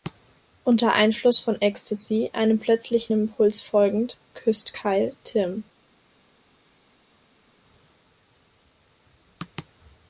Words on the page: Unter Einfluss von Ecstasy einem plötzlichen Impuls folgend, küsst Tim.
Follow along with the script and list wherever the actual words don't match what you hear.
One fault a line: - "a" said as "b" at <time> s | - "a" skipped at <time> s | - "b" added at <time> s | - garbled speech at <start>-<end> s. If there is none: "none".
- "Kyle" added at 4.7 s